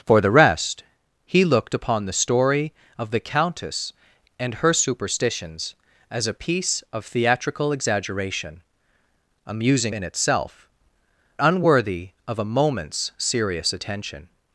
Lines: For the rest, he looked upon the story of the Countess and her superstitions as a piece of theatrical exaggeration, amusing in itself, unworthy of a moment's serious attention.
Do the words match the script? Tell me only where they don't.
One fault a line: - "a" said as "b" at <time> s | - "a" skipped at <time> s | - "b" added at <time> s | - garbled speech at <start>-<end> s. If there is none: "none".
none